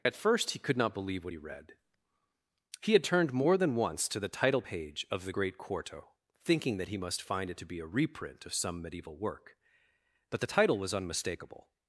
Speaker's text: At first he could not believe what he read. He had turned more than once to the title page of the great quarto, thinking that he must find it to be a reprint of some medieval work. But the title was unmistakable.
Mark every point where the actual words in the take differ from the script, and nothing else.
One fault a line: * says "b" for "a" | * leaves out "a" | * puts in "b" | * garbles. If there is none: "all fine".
all fine